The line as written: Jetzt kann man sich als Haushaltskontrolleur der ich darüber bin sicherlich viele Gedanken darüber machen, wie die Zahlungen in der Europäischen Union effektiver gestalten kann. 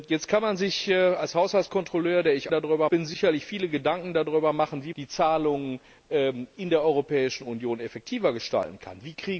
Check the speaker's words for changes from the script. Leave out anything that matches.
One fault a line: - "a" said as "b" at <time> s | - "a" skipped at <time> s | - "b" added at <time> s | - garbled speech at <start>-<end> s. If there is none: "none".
none